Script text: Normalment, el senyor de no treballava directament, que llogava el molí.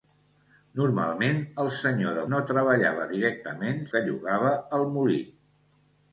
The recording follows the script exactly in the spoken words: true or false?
true